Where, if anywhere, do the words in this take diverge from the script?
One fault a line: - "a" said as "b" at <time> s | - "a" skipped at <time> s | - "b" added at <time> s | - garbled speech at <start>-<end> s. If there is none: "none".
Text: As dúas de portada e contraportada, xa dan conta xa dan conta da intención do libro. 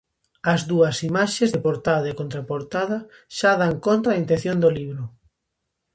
- "imaxes" added at 1.1 s
- "xa dan conta" skipped at 4.1 s